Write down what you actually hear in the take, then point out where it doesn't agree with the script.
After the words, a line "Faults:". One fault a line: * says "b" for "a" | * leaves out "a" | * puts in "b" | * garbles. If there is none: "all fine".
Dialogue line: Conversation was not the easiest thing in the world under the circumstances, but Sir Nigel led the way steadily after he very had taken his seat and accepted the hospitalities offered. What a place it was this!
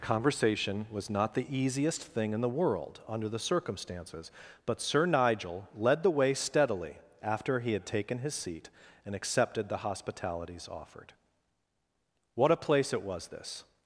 Conversation was not the easiest thing in the world under the circumstances, but Sir Nigel led the way steadily after he had taken his seat and accepted the hospitalities offered. What a place it was this!
Faults:
* leaves out "very"